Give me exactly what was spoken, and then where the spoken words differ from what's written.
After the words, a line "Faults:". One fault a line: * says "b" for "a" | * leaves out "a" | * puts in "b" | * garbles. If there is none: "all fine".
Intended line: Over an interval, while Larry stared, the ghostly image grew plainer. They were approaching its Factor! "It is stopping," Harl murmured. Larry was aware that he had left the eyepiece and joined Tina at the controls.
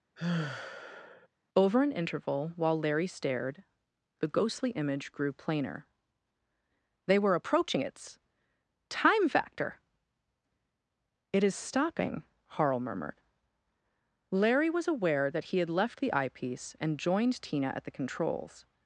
Over an interval, while Larry stared, the ghostly image grew plainer. They were approaching its Time factor! "It is stopping," Harl murmured. Larry was aware that he had left the eyepiece and joined Tina at the controls.
Faults:
* puts in "Time"